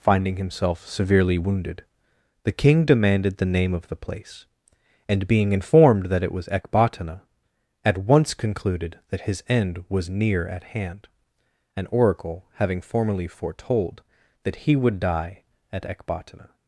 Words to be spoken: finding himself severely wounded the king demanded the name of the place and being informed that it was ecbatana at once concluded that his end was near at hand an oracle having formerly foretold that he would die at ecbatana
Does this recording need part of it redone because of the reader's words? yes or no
no